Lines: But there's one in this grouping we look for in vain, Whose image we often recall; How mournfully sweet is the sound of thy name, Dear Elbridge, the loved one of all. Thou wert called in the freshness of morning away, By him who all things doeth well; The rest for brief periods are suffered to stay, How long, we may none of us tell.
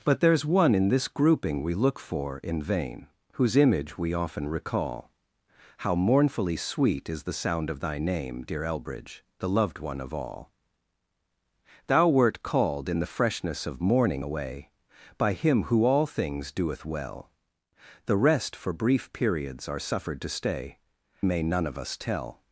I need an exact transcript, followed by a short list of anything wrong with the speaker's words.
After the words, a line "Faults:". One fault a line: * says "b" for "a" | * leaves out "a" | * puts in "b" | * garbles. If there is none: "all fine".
But there's one in this grouping we look for in vain, Whose image we often recall; How mournfully sweet is the sound of thy name, Dear Elbridge, the loved one of all. Thou wert called in the freshness of morning away, By him who all things doeth well; The rest for brief periods are suffered to stay, May none of us tell.
Faults:
* leaves out "How long we"